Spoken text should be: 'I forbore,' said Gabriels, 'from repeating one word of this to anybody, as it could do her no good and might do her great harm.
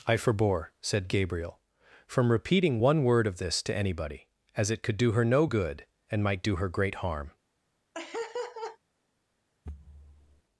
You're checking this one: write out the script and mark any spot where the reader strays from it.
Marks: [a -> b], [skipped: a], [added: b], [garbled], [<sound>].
'I forbore,' said [Gabriels, -> Gabriel] 'from repeating one word of this to anybody, as it could do her no good and might do her great harm. [laugh] [thud]